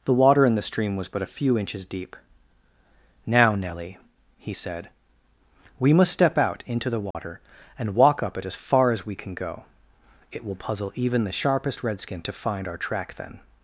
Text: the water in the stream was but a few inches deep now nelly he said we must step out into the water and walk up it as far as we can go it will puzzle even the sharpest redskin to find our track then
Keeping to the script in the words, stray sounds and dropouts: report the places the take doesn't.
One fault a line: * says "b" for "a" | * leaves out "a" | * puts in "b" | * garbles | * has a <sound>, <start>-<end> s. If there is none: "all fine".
* has a dropout, 7.1-7.1 s